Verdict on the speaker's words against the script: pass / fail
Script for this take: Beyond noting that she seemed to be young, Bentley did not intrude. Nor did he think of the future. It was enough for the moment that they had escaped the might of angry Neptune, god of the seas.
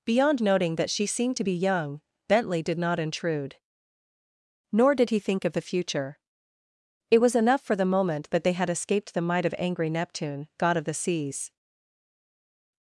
pass